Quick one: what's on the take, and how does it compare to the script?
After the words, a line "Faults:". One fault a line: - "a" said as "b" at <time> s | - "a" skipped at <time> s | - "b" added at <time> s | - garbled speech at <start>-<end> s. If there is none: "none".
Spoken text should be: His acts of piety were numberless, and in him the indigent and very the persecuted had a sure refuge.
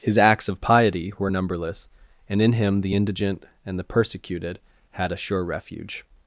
His acts of piety were numberless, and in him the indigent and the persecuted had a sure refuge.
Faults:
- "very" skipped at 3.8 s